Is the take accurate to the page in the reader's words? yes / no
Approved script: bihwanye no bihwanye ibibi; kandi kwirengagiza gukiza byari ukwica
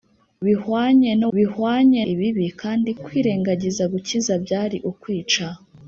yes